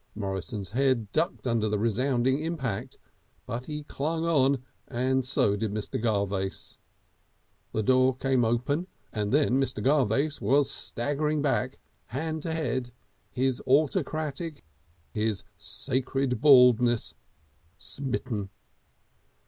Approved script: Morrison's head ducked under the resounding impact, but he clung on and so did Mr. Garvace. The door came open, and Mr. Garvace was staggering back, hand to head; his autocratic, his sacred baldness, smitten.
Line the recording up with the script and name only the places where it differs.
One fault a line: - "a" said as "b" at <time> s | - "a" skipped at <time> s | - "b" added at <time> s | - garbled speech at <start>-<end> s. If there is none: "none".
- "then" added at 9.3 s